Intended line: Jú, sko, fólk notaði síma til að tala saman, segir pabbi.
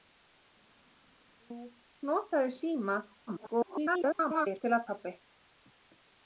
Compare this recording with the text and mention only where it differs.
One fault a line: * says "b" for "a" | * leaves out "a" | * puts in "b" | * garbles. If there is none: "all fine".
* leaves out "sko fólk"
* garbles
* leaves out "tala saman segir"